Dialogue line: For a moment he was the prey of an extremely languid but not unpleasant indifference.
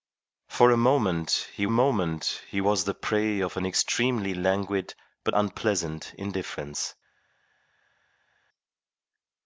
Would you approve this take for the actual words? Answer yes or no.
no